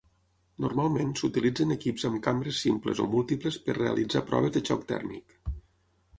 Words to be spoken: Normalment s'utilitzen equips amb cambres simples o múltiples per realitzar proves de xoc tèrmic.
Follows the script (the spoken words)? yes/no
yes